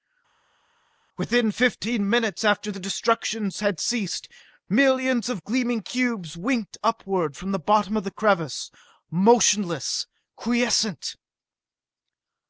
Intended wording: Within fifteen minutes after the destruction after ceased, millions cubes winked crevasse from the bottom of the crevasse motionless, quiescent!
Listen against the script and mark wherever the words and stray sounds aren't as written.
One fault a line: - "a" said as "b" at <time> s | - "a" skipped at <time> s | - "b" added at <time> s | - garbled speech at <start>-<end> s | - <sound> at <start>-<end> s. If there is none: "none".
- "after" said as "had" at 3.6 s
- "of gleaming" added at 5.3 s
- "crevasse" said as "upward" at 6.8 s